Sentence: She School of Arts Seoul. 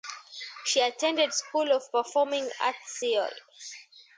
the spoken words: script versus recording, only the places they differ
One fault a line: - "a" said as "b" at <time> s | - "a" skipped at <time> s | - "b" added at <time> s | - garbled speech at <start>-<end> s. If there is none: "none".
- "attended" added at 0.8 s
- "Performing" added at 1.9 s